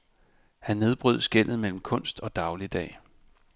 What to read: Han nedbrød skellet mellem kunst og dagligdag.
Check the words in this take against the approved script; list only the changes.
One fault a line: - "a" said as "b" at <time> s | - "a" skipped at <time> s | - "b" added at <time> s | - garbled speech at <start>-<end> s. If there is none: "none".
none